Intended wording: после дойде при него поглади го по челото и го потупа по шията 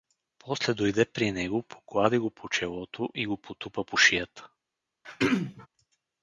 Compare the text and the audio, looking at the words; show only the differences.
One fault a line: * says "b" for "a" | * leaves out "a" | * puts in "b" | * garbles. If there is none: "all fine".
all fine